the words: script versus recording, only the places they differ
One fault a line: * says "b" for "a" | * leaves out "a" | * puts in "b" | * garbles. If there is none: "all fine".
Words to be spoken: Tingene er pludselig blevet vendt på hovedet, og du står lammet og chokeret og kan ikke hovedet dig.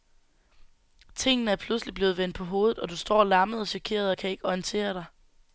* says "orientere" for "hovedet"